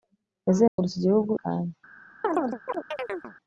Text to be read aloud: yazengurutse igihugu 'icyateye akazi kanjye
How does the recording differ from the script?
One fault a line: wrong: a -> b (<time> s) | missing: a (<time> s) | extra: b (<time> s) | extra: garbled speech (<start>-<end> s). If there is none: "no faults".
missing: icyateye akazi (1.3 s)